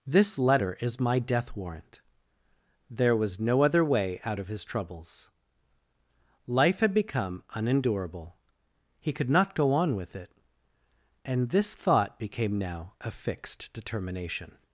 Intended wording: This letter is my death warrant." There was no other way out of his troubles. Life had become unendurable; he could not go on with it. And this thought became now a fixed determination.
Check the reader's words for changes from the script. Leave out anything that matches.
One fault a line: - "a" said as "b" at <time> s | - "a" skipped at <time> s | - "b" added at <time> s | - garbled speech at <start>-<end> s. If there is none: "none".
none